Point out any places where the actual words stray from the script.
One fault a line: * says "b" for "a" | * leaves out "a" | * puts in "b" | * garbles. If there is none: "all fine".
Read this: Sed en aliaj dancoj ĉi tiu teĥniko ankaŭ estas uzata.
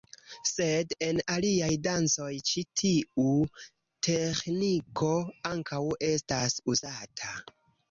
all fine